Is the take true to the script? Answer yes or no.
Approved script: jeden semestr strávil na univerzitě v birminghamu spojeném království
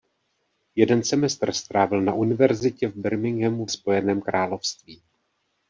yes